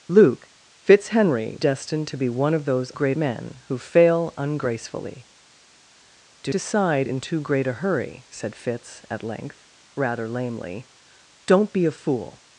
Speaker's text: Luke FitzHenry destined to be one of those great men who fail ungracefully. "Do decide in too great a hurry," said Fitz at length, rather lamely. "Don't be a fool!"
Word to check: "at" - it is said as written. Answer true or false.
true